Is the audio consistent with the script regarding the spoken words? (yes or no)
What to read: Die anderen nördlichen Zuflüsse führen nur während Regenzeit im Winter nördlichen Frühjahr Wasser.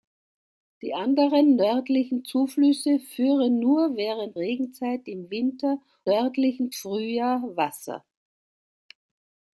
yes